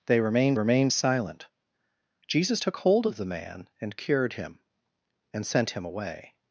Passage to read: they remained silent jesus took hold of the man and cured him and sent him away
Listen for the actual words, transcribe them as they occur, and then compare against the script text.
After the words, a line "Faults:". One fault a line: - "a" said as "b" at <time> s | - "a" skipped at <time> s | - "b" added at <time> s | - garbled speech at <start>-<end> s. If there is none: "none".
they remained remained silent jesus took hold of the man and cured him and sent him away
Faults:
- "remained" added at 0.5 s